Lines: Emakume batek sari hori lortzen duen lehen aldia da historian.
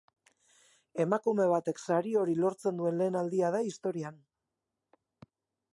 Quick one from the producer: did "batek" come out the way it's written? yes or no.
yes